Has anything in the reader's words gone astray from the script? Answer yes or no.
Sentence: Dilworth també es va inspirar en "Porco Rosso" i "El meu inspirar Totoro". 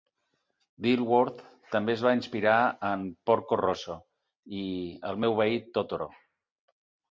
yes